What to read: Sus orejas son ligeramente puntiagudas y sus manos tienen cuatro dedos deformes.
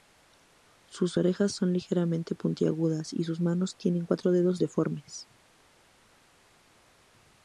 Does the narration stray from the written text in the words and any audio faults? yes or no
no